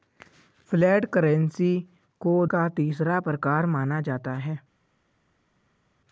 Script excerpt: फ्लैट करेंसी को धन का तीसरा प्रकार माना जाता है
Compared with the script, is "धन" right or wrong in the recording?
wrong